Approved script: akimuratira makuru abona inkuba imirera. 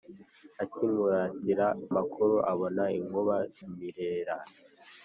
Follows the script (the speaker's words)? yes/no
yes